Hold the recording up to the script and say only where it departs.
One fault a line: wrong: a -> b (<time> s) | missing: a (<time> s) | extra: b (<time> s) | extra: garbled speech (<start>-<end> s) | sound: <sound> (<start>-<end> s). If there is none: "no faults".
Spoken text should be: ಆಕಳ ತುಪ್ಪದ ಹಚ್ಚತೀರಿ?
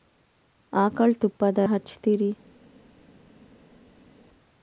no faults